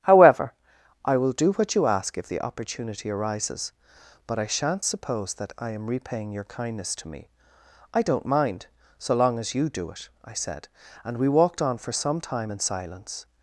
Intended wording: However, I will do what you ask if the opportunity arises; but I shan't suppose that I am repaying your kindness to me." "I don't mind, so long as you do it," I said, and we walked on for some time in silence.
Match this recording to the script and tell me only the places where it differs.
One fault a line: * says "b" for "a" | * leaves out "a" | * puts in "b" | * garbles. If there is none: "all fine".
all fine